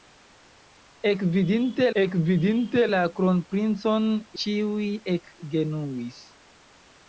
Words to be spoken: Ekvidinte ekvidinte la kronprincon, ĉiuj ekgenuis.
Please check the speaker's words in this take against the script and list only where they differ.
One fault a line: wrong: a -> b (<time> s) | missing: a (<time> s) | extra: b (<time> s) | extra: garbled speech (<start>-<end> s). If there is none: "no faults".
no faults